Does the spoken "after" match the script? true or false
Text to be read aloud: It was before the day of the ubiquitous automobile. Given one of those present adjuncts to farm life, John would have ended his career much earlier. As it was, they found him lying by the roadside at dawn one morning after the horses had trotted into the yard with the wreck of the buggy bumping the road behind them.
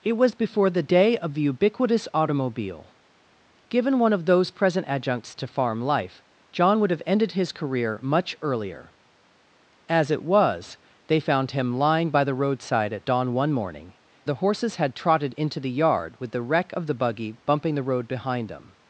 false